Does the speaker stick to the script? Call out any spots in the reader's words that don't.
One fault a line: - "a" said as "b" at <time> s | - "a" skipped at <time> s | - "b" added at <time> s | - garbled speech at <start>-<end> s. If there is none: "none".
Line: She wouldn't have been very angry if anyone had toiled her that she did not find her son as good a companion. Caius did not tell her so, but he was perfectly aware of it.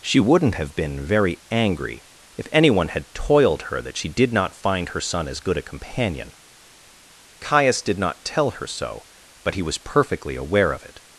none